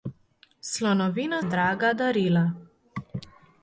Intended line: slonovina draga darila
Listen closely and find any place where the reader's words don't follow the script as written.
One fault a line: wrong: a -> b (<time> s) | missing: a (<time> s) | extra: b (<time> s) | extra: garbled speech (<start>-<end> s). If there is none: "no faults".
no faults